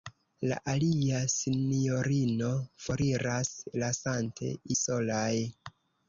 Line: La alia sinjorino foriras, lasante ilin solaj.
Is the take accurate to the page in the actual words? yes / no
no